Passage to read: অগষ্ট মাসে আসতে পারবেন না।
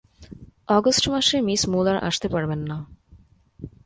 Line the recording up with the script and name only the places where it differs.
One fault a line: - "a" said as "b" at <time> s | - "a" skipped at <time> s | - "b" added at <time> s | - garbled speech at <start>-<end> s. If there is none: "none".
- "মিস মূলার" added at 1.4 s